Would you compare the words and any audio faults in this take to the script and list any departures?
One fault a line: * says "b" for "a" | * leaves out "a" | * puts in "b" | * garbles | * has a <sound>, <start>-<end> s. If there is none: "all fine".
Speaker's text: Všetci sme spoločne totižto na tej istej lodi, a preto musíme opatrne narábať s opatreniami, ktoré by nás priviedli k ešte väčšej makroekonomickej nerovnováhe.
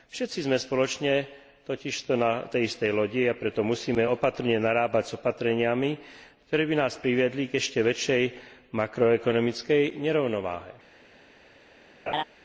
* has a laugh, 12.1-12.2 s